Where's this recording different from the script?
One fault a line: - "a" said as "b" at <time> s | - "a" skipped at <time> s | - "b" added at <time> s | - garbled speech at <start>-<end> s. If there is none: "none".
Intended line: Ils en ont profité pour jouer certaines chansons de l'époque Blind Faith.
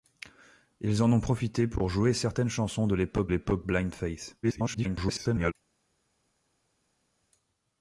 - "l'époque" added at 3.3 s
- garbled speech at 4.4-5.5 s